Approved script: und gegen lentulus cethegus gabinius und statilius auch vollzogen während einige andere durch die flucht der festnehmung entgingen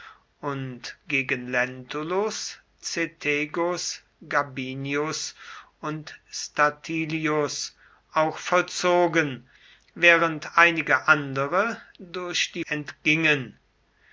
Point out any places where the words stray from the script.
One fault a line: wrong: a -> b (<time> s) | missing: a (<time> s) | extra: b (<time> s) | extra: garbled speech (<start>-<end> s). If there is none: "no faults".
missing: flucht der festnehmung (12.6 s)